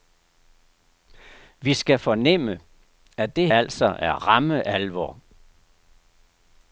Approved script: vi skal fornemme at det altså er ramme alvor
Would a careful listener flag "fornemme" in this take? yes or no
no